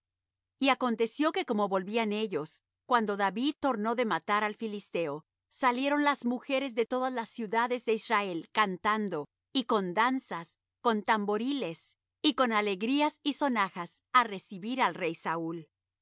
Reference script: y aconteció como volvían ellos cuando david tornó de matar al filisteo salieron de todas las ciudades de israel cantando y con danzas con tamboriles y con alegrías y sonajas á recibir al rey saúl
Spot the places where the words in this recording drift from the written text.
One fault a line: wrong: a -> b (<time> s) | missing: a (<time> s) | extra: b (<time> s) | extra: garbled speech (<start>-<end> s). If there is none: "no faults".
extra: que (1.3 s)
extra: las mujeres (6.0 s)